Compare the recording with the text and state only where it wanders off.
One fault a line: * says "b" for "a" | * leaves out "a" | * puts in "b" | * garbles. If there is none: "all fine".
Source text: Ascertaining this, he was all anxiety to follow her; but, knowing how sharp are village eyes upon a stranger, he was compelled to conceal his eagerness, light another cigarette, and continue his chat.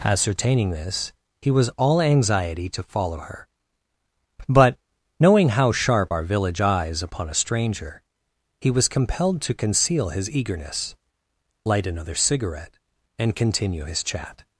all fine